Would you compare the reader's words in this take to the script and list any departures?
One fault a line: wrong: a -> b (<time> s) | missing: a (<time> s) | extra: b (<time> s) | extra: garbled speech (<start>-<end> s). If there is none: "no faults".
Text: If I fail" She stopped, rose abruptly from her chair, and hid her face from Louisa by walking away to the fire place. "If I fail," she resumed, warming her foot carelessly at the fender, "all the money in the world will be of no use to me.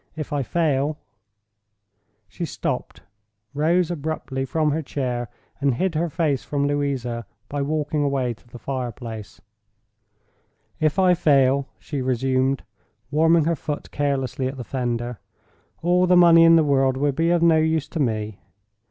no faults